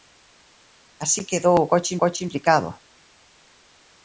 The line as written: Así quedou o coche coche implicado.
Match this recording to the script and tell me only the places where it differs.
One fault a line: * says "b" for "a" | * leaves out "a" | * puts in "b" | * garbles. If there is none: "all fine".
all fine